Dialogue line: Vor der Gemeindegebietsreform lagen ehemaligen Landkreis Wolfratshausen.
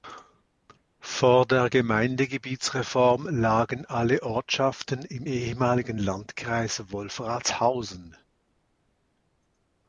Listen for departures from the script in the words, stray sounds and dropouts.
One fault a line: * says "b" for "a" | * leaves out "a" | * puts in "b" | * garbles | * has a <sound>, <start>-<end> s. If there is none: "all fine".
* puts in "alle Ortschaften im"